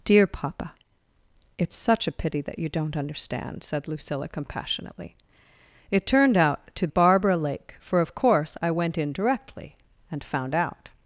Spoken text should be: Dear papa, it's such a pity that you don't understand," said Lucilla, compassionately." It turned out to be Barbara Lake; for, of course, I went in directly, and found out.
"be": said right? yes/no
no